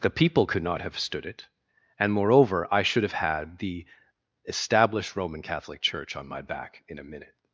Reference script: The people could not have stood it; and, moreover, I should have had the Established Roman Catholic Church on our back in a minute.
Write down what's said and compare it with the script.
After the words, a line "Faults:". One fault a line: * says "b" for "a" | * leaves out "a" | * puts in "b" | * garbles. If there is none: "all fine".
The people could not have stood it; and, moreover, I should have had the Established Roman Catholic Church on my back in a minute.
Faults:
* says "my" for "our"